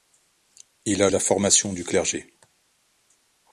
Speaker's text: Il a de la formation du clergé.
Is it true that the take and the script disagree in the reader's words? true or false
false